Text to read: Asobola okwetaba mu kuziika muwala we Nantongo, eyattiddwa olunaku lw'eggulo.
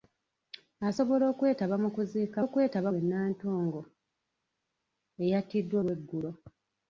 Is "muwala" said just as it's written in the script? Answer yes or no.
no